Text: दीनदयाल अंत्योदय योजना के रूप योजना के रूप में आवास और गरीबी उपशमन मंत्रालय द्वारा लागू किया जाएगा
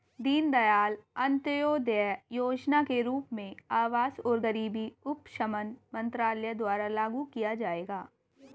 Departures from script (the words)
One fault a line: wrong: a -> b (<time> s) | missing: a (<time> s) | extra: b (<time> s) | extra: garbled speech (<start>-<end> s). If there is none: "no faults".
missing: योजना के रूप (3.3 s)